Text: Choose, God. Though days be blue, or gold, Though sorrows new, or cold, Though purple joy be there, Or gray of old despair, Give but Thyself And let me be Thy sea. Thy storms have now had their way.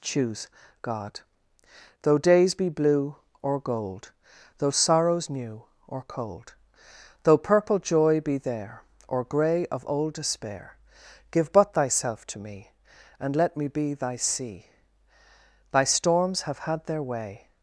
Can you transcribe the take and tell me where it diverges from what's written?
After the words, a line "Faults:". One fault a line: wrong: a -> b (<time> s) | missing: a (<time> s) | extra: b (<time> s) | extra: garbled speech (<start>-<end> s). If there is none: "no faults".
Choose, God. Though days be blue, or gold, Though sorrows new, or cold, Though purple joy be there, Or gray of old despair, Give but Thyself to me, And let me be Thy sea. Thy storms have had their way.
Faults:
extra: to me (12.3 s)
missing: now (16.6 s)